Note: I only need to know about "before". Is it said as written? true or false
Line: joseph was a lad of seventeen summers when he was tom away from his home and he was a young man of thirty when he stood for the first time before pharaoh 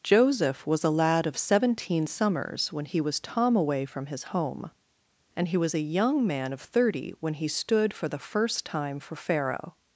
false